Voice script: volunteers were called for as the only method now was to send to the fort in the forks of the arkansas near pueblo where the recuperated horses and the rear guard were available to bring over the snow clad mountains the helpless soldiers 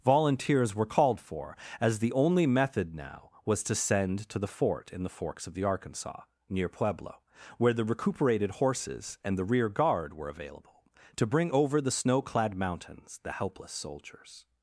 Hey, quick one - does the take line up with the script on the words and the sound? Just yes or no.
yes